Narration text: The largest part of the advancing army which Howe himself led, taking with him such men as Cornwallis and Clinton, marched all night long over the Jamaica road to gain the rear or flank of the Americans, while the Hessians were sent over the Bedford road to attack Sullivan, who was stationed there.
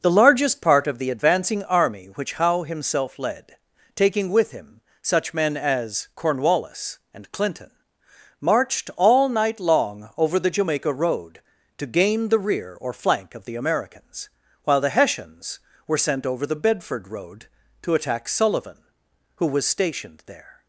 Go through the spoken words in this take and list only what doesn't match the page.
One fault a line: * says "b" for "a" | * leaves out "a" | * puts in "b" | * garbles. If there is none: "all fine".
all fine